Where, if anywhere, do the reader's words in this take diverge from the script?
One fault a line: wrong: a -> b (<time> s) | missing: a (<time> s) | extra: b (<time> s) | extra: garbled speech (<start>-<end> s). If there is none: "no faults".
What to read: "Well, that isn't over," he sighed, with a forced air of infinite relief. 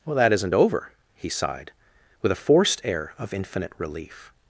no faults